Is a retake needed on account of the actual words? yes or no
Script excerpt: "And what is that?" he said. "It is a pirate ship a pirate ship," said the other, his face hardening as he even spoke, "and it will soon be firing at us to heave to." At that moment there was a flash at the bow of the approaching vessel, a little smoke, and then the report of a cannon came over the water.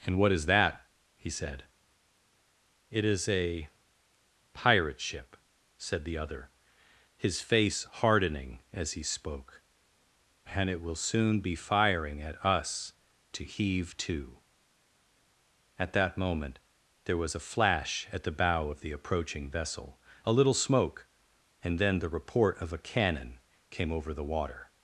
yes